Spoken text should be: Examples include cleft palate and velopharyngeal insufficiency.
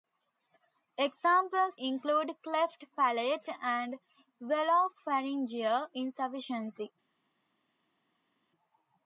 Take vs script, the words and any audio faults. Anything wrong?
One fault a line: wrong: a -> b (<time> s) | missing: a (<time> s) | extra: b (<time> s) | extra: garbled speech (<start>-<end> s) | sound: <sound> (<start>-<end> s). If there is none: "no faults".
no faults